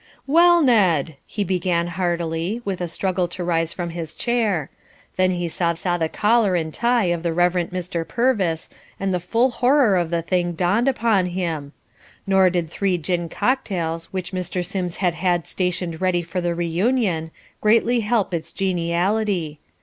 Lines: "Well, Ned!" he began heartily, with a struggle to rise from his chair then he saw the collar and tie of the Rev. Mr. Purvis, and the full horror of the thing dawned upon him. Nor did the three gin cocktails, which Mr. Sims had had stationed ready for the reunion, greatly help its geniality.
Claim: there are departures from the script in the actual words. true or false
true